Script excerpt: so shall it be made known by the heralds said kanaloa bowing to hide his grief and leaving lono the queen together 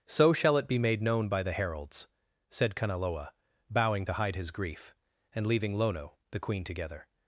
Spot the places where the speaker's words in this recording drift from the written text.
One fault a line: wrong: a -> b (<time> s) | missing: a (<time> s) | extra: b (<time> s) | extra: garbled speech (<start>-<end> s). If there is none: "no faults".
no faults